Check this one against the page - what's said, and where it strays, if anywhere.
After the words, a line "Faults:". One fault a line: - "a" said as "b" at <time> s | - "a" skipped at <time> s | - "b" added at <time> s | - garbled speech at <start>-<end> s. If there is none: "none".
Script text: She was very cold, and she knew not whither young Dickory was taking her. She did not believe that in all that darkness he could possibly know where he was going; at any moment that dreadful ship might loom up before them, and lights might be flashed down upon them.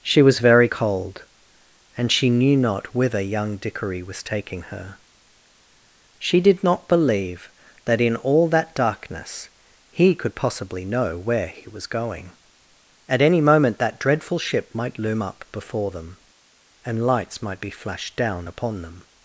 She was very cold, and she knew not whither young Dickory was taking her. She did not believe that in all that darkness he could possibly know where he was going; at any moment that dreadful ship might loom up before them, and lights might be flashed down upon them.
Faults:
none